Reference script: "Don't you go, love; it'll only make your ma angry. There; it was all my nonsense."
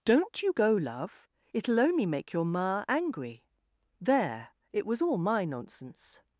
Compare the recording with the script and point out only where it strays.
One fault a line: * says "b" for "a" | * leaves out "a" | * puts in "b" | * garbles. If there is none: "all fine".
all fine